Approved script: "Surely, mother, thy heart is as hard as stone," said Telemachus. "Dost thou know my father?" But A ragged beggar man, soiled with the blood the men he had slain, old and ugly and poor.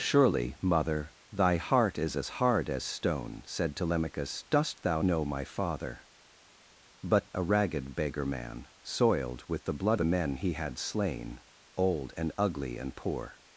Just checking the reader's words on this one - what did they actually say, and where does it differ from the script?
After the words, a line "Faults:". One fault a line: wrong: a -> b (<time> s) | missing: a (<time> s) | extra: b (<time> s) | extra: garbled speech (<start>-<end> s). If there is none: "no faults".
"Surely, mother, thy heart is as hard as stone," said Telemachus. "Dost thou know my father?" But A ragged beggar man, soiled with the blood the men he had slain, old and ugly and poor.
Faults:
no faults